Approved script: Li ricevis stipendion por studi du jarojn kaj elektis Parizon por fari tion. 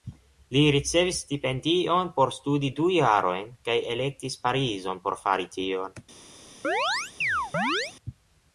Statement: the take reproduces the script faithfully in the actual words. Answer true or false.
true